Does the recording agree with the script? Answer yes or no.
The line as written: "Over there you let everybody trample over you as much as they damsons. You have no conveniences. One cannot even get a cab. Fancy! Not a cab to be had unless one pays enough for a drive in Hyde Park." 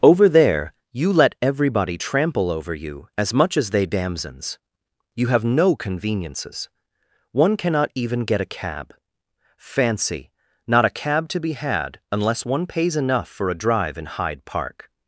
yes